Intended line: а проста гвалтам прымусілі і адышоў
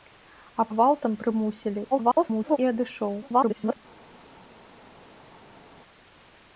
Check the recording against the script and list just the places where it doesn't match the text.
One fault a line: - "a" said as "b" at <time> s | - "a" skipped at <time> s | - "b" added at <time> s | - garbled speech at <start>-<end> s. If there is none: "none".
- "проста" skipped at 0.6 s
- garbled speech at 1.9-2.6 s
- garbled speech at 3.2-3.8 s